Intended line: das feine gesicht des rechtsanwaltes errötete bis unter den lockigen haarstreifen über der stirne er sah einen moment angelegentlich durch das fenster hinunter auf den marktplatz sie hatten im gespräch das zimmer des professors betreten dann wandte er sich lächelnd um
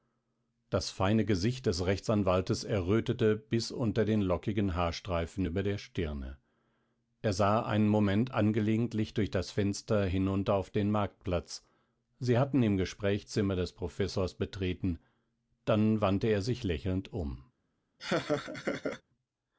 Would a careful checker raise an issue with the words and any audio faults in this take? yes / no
yes